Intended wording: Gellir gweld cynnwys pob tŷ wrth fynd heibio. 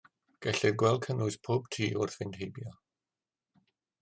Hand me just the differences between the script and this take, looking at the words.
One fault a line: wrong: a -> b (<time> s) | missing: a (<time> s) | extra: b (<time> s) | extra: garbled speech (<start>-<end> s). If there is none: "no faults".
no faults